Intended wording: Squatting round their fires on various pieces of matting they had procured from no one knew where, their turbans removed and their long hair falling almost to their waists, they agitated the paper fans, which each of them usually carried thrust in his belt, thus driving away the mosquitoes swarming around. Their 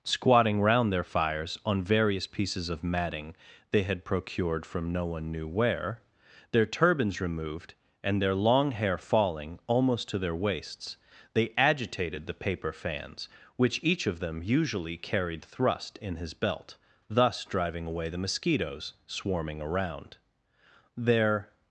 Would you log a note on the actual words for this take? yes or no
no